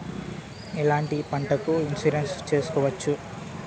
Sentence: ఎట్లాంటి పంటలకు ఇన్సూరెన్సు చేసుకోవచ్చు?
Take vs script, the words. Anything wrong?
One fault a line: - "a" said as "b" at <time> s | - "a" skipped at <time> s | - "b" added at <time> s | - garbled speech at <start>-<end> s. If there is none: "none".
none